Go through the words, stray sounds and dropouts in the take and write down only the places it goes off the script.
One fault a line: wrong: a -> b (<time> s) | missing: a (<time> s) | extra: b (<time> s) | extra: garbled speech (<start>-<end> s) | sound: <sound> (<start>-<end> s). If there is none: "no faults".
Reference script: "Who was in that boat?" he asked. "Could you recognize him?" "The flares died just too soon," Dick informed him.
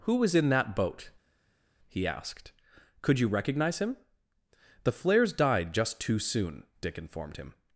no faults